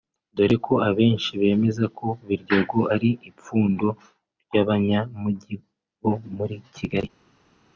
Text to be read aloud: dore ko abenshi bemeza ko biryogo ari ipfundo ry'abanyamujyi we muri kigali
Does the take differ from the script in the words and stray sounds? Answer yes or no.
yes